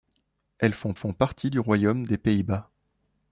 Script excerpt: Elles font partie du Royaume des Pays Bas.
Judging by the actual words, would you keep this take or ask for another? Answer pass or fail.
fail